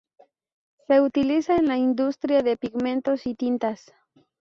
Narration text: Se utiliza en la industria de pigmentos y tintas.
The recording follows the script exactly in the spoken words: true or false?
true